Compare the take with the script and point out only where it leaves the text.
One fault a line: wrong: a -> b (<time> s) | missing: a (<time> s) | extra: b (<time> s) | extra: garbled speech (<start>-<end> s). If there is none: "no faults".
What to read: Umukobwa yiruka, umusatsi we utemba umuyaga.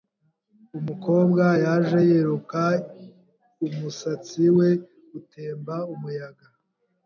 extra: yaje (1.6 s)